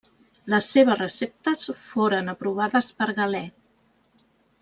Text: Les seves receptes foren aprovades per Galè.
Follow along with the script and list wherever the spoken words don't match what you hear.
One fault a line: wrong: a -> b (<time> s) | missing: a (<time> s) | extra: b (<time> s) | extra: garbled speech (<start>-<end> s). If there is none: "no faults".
no faults